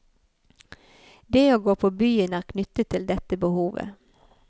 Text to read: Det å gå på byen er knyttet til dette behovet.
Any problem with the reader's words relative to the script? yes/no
no